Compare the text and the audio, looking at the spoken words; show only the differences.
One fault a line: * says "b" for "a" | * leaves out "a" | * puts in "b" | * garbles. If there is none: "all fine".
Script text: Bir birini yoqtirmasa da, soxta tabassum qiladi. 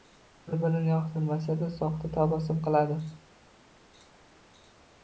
all fine